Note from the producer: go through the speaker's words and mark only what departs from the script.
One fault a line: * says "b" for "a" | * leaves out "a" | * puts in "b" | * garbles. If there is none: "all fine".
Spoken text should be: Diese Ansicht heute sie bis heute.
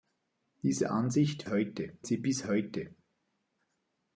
all fine